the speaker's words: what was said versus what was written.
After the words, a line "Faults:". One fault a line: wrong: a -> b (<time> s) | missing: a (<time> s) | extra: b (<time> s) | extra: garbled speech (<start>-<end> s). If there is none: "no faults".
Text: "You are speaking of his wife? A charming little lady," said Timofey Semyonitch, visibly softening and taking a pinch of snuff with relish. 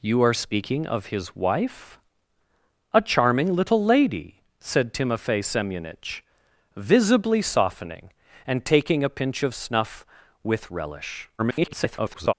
"You are speaking of his wife? A charming little lady," said Timofey Semyonitch, visibly softening and taking a pinch of snuff with relish. [garbled]
Faults:
extra: garbled speech (11.4-12.3 s)